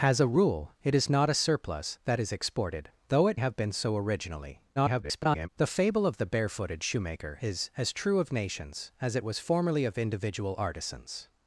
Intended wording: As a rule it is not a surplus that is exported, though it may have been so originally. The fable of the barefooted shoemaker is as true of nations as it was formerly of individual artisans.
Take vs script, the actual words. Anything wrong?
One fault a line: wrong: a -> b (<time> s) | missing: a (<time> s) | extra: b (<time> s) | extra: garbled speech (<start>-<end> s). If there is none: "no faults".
missing: may (3.4 s)
extra: garbled speech (4.8-5.5 s)